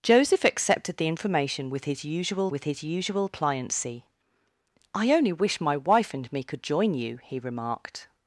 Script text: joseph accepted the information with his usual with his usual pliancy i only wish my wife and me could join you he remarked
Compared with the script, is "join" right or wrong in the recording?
right